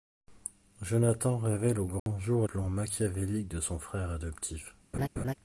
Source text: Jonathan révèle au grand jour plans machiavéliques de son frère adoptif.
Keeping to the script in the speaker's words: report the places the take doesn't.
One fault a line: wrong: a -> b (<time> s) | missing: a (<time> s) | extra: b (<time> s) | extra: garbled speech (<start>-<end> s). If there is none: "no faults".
no faults